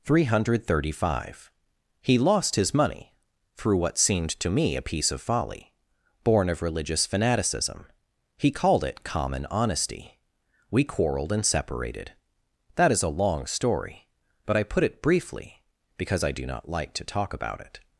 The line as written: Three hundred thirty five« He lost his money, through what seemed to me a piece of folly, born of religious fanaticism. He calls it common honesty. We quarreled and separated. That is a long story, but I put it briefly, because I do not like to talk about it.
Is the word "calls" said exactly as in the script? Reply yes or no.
no